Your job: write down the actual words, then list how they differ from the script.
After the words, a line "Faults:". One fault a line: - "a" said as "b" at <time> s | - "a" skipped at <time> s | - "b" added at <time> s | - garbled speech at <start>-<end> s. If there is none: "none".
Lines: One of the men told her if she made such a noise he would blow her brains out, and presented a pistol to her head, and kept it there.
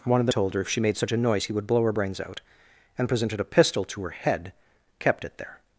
One of the told her if she made such a noise he would blow her brains out, and presented a pistol to her head, kept it there.
Faults:
- "men" skipped at 0.3 s
- "and" skipped at 4.5 s